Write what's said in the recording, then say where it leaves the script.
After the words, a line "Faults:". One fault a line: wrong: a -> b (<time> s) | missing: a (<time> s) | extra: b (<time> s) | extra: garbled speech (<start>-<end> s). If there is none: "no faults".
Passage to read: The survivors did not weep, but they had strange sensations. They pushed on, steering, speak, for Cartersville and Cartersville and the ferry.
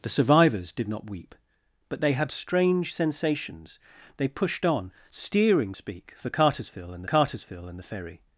The survivors did not weep, but they had strange sensations. They pushed on, steering, speak, for Cartersville and Cartersville and the ferry.
Faults:
no faults